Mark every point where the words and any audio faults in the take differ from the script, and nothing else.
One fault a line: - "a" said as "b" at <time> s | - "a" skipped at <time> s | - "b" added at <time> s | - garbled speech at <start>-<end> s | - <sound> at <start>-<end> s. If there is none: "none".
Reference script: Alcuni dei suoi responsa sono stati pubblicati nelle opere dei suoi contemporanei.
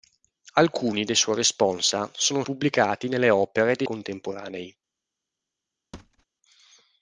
- "stati" skipped at 2.4 s
- "suoi" skipped at 3.9 s
- thud at 5.9-6.3 s